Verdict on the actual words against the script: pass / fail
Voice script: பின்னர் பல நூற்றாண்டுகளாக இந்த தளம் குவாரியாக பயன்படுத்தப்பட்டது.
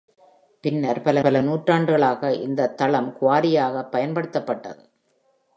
fail